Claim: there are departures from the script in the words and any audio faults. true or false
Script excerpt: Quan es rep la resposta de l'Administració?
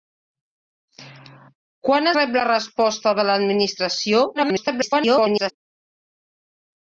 true